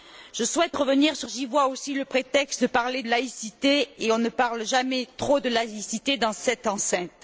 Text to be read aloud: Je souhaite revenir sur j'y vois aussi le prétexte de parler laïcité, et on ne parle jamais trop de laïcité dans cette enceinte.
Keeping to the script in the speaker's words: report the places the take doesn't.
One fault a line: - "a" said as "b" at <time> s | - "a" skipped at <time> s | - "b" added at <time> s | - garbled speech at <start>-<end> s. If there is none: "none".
none